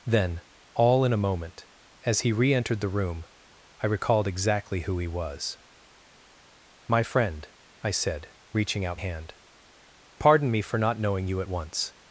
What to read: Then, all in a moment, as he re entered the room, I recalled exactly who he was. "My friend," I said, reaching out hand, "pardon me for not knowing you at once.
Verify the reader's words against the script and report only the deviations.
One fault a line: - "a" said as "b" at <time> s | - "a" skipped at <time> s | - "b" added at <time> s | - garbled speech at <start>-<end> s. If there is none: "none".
none